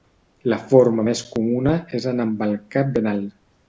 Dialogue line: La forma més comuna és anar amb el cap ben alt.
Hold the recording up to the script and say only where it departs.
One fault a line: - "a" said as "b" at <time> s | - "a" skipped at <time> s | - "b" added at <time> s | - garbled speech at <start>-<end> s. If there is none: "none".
none